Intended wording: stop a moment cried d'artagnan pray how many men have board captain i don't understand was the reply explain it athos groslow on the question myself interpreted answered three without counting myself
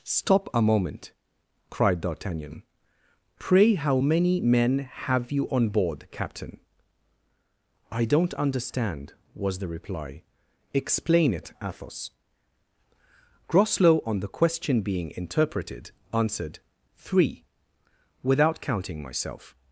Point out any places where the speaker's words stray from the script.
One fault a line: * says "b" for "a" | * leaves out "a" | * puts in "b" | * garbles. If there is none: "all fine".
* puts in "you on"
* says "being" for "myself"